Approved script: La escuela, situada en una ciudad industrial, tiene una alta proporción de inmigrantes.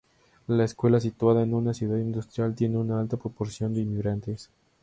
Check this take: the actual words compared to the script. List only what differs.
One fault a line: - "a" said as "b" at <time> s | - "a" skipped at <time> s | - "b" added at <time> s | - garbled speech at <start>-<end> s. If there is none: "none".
none